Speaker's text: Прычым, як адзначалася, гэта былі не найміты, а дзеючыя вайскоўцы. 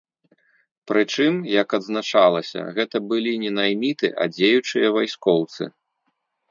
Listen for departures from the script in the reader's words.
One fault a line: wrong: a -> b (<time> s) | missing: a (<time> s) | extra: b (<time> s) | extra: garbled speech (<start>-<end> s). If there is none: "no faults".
no faults